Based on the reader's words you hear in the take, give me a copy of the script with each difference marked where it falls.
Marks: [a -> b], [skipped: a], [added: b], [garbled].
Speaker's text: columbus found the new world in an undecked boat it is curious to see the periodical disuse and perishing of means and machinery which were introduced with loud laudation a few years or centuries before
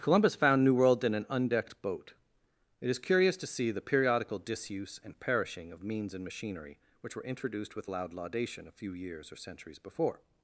columbus found [skipped: the] new world in an undecked boat it is curious to see the periodical disuse and perishing of means and machinery which were introduced with loud laudation a few years or centuries before